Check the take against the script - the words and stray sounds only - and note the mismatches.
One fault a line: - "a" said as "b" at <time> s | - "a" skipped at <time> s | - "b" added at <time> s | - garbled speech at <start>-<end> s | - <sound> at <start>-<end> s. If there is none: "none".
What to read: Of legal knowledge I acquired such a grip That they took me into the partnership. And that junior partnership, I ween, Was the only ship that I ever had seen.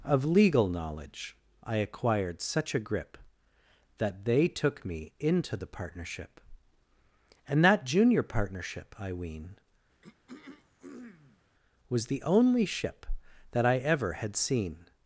- throat clearing at 10.0-11.4 s